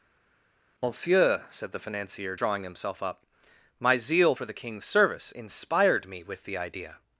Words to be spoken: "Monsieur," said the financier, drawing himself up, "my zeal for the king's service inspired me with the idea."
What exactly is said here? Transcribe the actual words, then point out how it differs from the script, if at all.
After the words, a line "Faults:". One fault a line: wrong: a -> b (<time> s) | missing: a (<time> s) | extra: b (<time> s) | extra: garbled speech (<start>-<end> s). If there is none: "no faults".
"Monsieur," said the financier, drawing himself up, "my zeal for the king's service inspired me with the idea."
Faults:
no faults